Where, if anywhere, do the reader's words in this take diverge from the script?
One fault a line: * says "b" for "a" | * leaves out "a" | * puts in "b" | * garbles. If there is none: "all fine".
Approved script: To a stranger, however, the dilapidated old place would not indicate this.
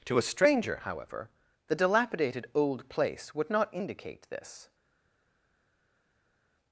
all fine